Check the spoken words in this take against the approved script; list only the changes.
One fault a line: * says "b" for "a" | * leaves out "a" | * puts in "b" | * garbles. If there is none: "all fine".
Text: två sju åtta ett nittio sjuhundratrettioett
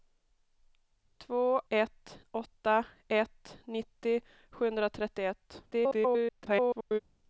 * says "ett" for "sju"
* garbles